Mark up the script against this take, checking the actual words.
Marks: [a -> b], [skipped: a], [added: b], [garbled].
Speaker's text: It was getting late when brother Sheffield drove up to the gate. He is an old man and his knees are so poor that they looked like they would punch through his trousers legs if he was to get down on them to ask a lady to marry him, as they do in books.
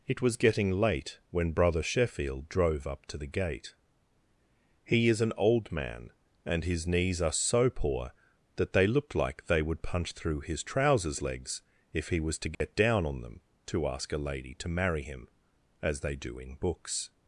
It was getting late when brother Sheffield drove up to the gate. He is an old man and his knees are so poor that they looked like they would punch through his trousers legs if he was to get down on them to ask a lady to marry him, as they do in books.